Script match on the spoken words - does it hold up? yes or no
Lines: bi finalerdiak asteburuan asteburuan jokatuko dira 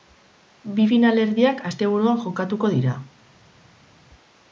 no